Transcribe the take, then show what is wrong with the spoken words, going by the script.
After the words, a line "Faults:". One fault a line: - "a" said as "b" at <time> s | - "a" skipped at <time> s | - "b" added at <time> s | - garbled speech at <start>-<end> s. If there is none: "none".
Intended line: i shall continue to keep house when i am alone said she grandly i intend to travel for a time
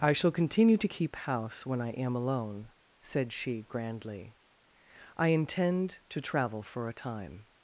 i shall continue to keep house when i am alone said she grandly i intend to travel for a time
Faults:
none